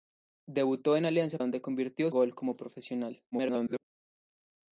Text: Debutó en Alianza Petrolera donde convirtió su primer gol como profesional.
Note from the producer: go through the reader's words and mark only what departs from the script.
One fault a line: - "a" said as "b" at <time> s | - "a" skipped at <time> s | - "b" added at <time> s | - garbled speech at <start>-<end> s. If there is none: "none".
- "Petrolera" skipped at 1.4 s
- "su primer" skipped at 2.1 s
- garbled speech at 3.3-3.8 s